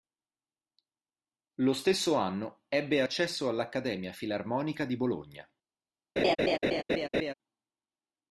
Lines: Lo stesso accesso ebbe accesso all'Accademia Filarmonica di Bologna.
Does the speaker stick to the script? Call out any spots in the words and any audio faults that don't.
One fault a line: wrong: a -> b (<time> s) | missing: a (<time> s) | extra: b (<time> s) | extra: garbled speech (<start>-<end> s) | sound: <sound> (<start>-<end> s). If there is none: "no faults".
wrong: accesso -> anno (2.1 s)
sound: laugh (6.2-7.3 s)